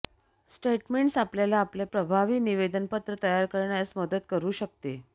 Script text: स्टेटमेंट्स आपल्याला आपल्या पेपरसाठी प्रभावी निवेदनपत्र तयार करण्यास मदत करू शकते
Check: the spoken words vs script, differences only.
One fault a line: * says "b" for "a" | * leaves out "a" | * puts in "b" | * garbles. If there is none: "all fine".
* leaves out "पेपरसाठी"